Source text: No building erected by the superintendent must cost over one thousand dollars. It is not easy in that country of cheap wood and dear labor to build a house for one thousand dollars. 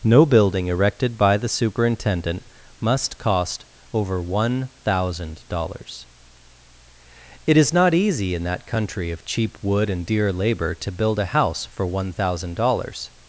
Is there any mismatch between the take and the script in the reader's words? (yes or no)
no